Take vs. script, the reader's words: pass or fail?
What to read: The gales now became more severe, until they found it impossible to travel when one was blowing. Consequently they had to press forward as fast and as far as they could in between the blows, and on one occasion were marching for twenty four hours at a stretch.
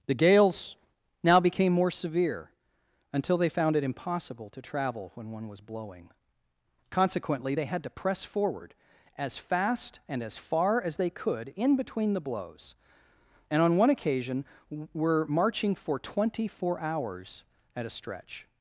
pass